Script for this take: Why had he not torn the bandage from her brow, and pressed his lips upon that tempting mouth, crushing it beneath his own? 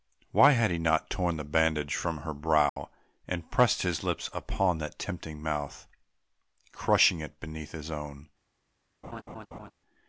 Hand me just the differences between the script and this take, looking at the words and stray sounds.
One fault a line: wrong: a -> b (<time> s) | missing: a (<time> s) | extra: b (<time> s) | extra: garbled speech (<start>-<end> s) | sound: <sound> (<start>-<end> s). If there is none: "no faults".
sound: dropout (2.7-2.8 s)
sound: laugh (9.0-9.7 s)